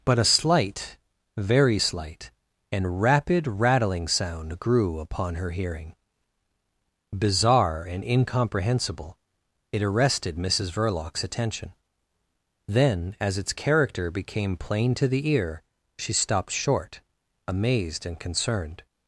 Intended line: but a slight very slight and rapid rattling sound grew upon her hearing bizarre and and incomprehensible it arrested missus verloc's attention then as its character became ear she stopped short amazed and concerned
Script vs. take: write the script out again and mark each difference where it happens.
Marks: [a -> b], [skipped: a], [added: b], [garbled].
but a slight very slight and rapid rattling sound grew upon her hearing bizarre and [skipped: and] incomprehensible it arrested missus verloc's attention then as its character became [added: plain to the] ear she stopped short amazed and concerned